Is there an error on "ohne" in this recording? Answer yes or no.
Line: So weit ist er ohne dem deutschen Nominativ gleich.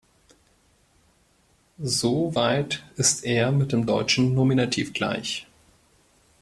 yes